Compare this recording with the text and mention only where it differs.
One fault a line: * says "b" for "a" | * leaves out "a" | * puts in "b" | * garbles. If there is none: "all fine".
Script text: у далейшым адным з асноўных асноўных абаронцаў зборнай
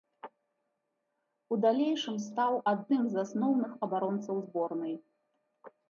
* puts in "стаў"
* leaves out "асноўных"